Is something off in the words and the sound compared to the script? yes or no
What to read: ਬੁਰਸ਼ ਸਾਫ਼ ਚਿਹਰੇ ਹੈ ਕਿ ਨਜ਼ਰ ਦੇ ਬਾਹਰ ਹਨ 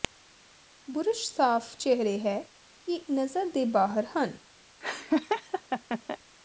yes